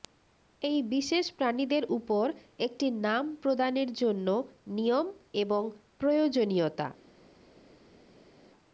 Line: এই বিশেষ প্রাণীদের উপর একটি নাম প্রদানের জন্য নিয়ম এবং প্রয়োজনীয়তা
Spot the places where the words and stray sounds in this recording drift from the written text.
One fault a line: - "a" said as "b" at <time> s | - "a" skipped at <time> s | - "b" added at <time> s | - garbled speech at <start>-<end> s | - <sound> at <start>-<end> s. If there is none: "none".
none